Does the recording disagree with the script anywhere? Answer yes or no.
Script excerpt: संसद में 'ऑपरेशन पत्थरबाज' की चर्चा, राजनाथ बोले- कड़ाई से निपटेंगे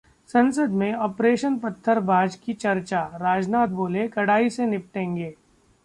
no